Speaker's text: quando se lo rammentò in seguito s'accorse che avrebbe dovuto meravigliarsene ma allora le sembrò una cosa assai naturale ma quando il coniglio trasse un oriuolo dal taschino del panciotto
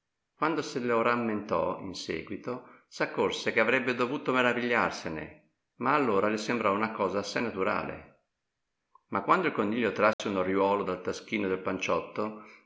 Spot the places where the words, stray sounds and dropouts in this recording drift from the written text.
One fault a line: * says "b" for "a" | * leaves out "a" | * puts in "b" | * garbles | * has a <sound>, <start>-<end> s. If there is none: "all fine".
* has a dropout, 10.1-10.2 s